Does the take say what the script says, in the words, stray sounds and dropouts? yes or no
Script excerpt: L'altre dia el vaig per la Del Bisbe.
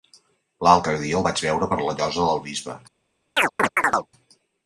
no